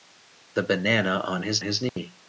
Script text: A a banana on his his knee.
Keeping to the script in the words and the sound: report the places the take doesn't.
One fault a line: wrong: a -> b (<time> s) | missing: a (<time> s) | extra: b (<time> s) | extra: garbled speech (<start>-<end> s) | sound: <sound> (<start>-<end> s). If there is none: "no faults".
sound: dropout (1.9-2.0 s)